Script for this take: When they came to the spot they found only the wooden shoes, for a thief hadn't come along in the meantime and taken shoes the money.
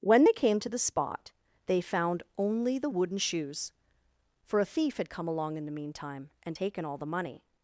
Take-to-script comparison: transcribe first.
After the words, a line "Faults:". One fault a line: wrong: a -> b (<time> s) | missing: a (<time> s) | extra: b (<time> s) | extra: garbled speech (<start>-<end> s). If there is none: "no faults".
When they came to the spot they found only the wooden shoes, for a thief had come along in the meantime and taken all the money.
Faults:
wrong: hadn't -> had (5.0 s)
wrong: shoes -> all (6.8 s)